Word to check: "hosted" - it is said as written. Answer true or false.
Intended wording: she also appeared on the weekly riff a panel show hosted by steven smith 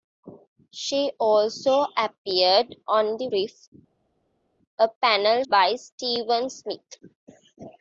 false